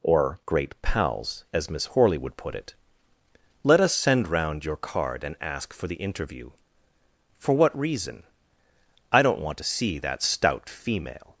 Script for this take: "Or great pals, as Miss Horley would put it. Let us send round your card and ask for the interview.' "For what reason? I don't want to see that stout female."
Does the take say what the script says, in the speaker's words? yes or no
yes